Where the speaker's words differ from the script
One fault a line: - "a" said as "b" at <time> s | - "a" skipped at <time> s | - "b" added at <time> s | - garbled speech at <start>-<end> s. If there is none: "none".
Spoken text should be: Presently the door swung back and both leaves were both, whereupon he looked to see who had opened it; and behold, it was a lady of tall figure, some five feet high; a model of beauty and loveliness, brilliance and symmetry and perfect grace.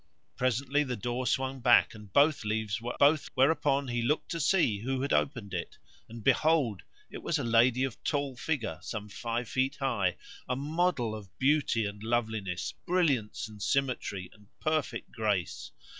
none